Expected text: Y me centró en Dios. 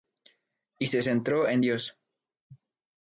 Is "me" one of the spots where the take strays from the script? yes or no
yes